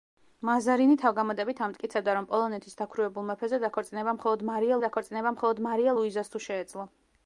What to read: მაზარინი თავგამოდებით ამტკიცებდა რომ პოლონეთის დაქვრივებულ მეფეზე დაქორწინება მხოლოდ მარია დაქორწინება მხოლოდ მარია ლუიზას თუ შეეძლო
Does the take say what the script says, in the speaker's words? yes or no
yes